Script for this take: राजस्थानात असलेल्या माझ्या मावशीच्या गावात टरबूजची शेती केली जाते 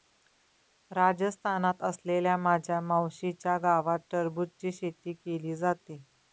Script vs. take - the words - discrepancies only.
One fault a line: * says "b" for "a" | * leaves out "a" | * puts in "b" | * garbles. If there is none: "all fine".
all fine